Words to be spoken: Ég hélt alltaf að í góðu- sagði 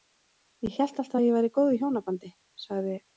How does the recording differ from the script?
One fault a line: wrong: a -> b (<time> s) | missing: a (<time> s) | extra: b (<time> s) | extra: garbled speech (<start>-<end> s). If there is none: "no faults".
extra: ég væri (1.2 s)
extra: hjónabandi (1.8 s)